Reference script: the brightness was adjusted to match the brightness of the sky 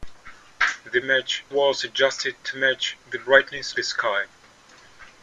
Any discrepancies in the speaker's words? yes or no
yes